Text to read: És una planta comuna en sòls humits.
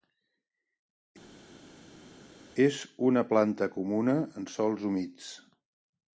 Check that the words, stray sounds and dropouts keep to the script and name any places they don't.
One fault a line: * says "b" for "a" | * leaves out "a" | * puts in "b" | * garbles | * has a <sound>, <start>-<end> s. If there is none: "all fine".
all fine